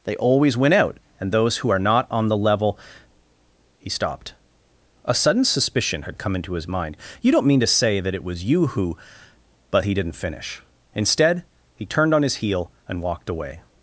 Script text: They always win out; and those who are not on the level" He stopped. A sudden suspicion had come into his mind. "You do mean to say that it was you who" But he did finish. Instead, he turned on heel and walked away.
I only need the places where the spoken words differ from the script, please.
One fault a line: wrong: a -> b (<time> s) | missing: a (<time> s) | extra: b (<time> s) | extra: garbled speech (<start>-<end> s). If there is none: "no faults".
wrong: do -> don't (7.3 s)
wrong: did -> didn't (9.9 s)
extra: his (12.2 s)